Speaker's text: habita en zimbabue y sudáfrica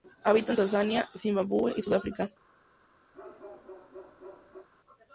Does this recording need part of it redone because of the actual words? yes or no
yes